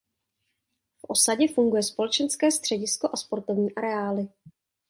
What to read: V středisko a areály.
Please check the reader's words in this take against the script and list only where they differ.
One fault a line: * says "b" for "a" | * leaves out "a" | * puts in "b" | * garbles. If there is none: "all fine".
* puts in "osadě funguje společenské"
* puts in "sportovní"